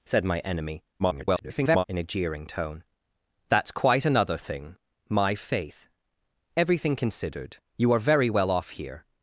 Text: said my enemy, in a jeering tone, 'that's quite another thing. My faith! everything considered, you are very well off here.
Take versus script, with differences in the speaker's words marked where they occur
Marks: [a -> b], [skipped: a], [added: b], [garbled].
said my enemy, [garbled] in a jeering tone, 'that's quite another thing. My faith! everything considered, you are very well off here.